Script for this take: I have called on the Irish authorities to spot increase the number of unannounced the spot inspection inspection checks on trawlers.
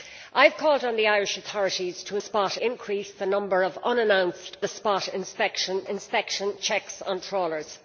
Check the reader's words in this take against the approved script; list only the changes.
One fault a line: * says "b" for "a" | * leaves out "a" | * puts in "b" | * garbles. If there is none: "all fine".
all fine